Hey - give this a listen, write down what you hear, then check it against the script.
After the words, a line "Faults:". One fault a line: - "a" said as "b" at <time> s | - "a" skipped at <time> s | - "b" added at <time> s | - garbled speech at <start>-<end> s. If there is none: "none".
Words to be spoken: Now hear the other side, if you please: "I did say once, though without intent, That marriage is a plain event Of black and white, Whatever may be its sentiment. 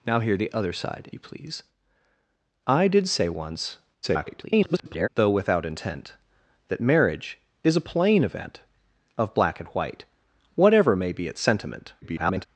Now hear the other side, you please: "I did say once, [garbled] though without intent, That marriage is a plain event Of black and white, Whatever may be its sentiment. [garbled]
Faults:
- "if" skipped at 1.1 s
- garbled speech at 4.0-5.1 s
- garbled speech at 12.0-12.5 s